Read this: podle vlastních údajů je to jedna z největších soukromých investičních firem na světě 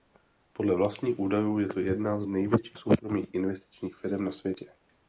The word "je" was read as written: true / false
true